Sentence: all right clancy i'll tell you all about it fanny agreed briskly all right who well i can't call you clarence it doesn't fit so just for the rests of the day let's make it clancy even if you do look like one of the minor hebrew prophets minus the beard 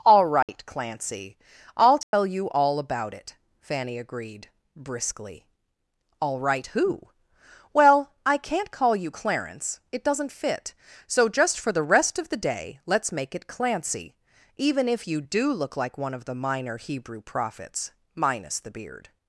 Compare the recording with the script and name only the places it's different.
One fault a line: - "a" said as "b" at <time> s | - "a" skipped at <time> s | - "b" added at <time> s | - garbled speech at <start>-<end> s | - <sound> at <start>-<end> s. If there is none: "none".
- dropout at 0.4-0.5 s
- dropout at 2.0-2.1 s
- "rests" said as "rest" at 11.8 s